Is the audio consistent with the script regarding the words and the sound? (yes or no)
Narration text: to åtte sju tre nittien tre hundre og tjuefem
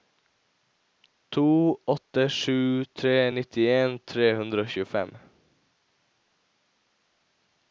yes